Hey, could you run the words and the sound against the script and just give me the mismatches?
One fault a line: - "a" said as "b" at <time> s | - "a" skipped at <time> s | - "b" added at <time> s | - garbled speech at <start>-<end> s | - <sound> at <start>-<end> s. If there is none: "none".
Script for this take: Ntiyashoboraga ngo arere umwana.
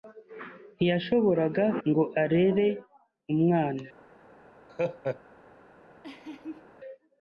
- laugh at 4.7-5.2 s
- laugh at 6.0-6.7 s